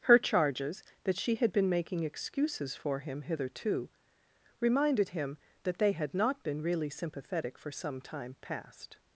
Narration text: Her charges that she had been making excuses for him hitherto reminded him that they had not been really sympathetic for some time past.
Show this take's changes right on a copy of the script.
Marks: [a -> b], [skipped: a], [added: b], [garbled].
Her charges that she had been making excuses for him hitherto reminded him that they had not been really sympathetic for some time past.